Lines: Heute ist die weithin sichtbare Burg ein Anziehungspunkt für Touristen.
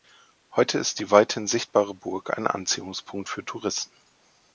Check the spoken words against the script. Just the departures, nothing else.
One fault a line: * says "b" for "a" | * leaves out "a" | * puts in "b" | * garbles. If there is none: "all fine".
all fine